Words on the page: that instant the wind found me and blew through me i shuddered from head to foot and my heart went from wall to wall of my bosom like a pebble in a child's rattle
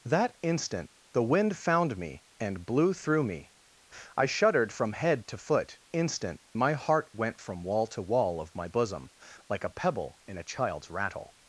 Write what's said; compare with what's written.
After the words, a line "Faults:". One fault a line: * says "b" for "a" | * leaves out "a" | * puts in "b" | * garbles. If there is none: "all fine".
that instant the wind found me and blew through me i shuddered from head to foot instant my heart went from wall to wall of my bosom like a pebble in a child's rattle
Faults:
* says "instant" for "and"